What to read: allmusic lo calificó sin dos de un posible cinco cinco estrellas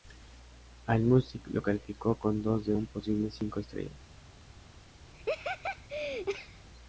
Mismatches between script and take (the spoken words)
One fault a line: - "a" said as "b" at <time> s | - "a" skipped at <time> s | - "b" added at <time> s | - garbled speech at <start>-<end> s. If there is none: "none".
- "sin" said as "con" at 2.1 s
- "cinco" skipped at 3.6 s